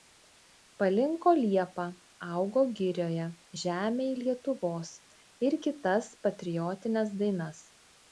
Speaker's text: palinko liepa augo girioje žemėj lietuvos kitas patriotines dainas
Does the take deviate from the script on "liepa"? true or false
false